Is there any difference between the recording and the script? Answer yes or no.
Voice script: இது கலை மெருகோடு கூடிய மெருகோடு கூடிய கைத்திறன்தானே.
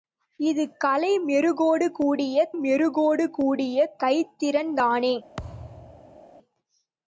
no